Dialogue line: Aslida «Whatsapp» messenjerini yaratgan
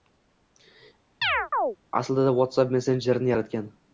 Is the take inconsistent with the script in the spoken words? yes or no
no